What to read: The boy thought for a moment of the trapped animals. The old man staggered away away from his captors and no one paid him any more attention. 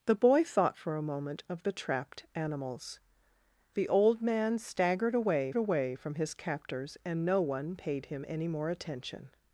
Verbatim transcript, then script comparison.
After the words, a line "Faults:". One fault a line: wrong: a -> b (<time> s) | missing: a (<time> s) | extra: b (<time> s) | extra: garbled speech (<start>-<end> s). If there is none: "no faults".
The boy thought for a moment of the trapped animals. The old man staggered away away from his captors and no one paid him any more attention.
Faults:
no faults